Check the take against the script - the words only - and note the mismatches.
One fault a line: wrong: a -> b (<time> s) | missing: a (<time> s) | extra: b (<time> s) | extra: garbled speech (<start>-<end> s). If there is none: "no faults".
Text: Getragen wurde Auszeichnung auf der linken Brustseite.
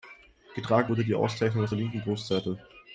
extra: die (1.0 s)